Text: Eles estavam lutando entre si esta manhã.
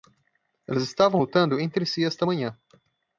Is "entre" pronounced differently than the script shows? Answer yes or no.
no